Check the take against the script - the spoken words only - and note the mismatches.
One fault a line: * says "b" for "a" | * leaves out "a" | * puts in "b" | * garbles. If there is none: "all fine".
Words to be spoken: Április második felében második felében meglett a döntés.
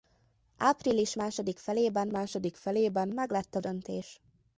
all fine